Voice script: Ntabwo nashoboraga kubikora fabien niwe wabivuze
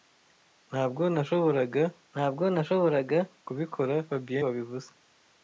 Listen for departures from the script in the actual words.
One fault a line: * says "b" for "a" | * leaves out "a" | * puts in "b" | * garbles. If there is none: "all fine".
* puts in "ntabwo nashoboraga"
* leaves out "niwe"